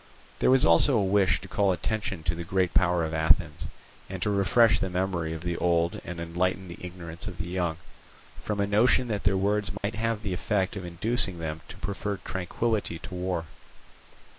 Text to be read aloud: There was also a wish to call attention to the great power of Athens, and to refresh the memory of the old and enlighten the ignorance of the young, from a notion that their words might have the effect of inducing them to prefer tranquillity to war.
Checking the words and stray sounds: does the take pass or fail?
fail